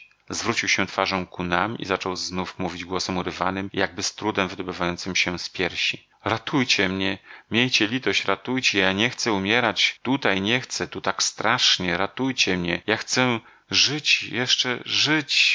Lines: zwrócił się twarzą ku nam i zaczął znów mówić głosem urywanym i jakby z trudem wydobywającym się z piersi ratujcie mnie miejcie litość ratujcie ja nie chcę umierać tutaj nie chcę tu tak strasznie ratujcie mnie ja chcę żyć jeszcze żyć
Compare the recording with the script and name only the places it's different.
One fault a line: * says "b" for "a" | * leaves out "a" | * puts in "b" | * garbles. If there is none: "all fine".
all fine